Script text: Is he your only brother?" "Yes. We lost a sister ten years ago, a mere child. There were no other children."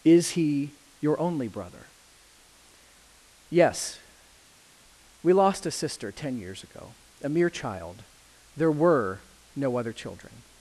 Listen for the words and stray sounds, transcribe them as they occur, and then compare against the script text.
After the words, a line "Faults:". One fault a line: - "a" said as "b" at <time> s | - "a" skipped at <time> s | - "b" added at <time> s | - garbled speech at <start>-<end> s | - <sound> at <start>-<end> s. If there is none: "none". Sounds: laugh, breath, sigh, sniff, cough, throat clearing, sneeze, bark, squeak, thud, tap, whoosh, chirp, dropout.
Is he your only brother?" "Yes. We lost a sister ten years ago, a mere child. There were no other children."
Faults:
none